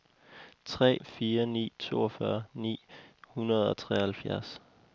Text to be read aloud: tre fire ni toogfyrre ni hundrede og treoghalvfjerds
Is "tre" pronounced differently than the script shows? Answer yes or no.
no